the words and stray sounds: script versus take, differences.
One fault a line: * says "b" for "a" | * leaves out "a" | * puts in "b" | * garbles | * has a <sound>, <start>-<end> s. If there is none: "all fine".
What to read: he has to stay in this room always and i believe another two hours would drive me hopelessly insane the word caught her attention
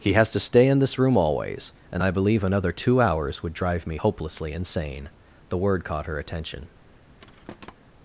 * has a thud, 7.2-7.7 s